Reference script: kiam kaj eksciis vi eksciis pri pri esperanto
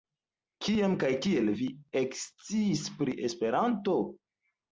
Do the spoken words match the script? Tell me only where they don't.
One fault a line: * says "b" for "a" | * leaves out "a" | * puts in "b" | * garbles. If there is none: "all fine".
* says "kiel" for "eksciis"
* leaves out "pri"